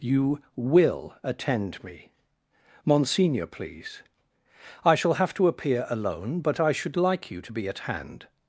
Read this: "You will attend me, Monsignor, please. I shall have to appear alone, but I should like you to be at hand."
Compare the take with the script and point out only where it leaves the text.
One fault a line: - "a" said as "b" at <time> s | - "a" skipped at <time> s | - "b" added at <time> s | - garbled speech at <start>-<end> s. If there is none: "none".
none